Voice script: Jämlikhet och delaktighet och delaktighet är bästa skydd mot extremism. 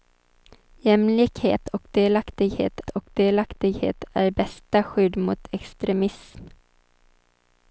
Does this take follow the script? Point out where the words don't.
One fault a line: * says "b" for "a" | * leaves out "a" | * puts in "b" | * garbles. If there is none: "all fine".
all fine